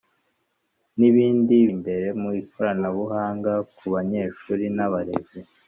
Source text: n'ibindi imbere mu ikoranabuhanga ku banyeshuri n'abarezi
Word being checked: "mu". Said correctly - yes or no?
yes